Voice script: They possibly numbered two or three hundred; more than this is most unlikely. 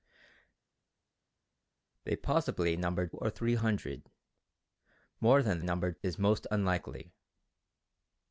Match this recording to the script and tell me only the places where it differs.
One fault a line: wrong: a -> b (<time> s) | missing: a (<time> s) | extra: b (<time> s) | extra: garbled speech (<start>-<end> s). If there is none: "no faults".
missing: two (3.1 s)
wrong: this -> numbered (5.6 s)